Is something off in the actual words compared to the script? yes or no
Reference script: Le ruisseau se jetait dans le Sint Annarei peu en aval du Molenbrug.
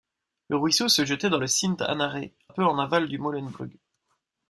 no